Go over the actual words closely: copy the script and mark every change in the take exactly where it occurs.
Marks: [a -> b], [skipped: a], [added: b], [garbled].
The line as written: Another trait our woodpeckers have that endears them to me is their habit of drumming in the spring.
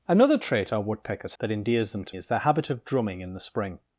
Another trait our woodpeckers [skipped: have] that endears them to [skipped: me] is their habit of drumming in the spring.